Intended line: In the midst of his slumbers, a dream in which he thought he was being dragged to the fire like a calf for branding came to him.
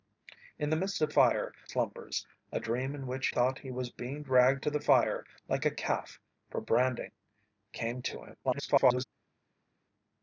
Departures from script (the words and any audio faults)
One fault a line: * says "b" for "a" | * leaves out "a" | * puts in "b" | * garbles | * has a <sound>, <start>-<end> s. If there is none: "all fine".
* says "fire" for "his"
* leaves out "he"
* garbles